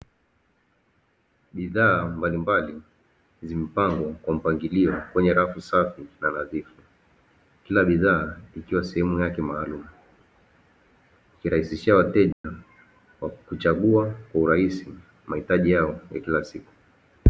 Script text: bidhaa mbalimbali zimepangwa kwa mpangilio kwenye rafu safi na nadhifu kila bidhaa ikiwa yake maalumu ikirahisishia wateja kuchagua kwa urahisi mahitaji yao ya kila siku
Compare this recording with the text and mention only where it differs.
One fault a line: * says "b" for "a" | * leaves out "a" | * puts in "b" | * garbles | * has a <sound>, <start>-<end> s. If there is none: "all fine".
* puts in "sehemu"
* has a dropout, 12.3-12.4 s